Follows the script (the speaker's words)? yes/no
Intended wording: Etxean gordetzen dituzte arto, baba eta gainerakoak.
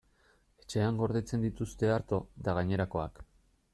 no